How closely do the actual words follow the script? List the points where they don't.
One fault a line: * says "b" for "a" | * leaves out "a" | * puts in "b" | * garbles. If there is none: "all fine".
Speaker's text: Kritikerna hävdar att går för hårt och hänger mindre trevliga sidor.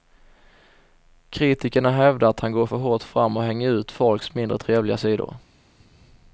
* puts in "han"
* puts in "fram"
* puts in "ut folks"